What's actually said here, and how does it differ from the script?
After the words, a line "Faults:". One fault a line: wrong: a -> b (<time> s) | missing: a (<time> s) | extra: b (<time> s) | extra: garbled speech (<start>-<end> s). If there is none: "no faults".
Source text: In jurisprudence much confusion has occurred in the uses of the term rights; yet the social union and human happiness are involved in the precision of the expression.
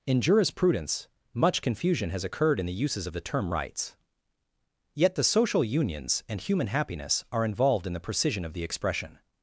In jurisprudence much confusion has occurred in the uses of the term rights; yet the social unions and human happiness are involved in the precision of the expression.
Faults:
wrong: union -> unions (5.6 s)